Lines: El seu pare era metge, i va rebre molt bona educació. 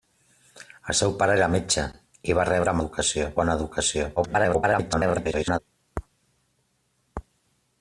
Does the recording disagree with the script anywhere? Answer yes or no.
yes